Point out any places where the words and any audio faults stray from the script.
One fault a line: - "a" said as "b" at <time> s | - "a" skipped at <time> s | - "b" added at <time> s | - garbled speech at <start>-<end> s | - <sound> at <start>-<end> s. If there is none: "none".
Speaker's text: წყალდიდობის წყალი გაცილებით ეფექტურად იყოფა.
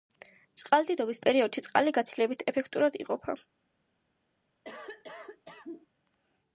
- "პერიოდში" added at 1.3 s
- cough at 4.6-5.9 s